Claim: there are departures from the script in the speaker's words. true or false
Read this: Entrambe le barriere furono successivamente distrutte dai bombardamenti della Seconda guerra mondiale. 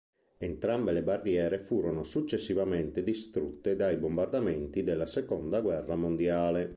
false